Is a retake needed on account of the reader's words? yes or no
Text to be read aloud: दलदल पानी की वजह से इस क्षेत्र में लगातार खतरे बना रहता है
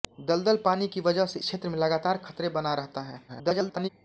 yes